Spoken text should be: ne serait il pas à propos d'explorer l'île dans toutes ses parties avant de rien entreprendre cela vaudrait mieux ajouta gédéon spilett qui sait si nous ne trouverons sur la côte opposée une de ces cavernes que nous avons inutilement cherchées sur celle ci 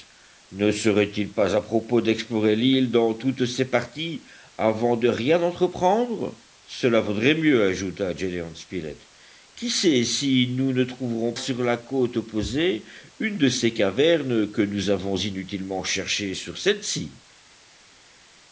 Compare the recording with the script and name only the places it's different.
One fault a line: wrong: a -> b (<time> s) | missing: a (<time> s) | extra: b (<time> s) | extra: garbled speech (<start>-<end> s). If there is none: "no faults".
no faults